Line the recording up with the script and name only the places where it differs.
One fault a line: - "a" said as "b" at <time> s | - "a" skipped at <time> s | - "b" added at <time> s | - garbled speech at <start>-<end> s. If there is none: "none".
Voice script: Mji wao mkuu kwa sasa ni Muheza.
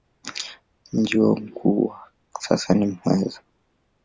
none